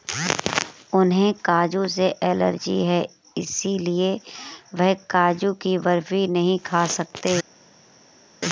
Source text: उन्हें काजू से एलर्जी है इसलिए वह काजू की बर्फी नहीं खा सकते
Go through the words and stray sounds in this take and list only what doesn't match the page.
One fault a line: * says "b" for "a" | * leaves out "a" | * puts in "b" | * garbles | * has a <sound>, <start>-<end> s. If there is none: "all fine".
all fine